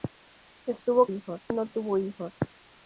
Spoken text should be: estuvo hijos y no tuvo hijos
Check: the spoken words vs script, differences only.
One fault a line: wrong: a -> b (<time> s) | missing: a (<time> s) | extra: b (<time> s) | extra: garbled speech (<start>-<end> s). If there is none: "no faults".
no faults